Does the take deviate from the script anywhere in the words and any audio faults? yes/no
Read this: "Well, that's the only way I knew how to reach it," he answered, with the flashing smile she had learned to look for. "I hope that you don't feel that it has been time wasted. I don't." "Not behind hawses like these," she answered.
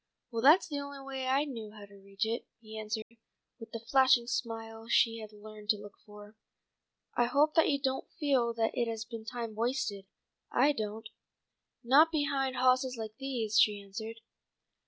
yes